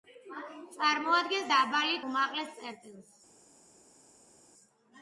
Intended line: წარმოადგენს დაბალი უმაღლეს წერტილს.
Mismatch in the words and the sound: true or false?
false